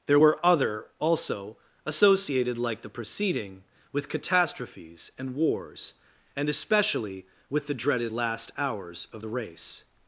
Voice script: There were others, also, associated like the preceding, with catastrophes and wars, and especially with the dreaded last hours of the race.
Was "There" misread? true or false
false